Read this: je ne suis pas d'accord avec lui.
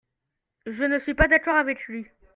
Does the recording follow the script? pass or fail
pass